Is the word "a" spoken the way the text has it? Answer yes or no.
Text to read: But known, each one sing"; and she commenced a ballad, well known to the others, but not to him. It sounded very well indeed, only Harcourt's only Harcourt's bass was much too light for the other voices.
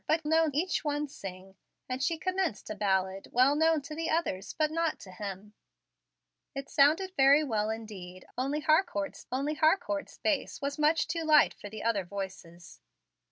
yes